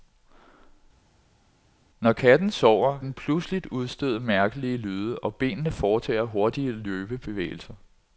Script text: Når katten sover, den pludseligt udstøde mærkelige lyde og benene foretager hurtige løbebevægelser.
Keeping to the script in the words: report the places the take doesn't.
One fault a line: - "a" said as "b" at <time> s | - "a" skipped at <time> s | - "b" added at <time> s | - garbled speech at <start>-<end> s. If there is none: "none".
none